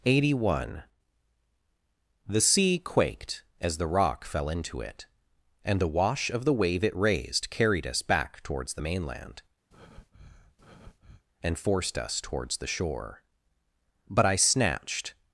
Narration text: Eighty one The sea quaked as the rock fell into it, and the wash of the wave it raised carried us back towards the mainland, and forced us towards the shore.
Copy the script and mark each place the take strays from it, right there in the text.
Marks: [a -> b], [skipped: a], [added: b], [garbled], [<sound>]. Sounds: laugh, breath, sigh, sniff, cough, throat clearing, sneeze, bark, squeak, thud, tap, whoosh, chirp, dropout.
Eighty one The sea quaked as the rock fell into it, and the wash of the wave it raised carried us back towards the mainland, [breath] and forced us towards the shore. [added: But I snatched]